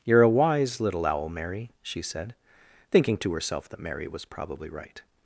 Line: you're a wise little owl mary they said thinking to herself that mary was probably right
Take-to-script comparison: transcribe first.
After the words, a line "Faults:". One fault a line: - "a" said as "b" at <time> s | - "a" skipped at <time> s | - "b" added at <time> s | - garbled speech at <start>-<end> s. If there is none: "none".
you're a wise little owl mary she said thinking to herself that mary was probably right
Faults:
- "they" said as "she" at 1.8 s